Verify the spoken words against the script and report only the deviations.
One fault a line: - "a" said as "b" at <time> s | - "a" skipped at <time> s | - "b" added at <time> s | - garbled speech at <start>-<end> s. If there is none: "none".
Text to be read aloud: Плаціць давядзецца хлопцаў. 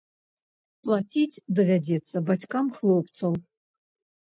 - "бацькам" added at 2.3 s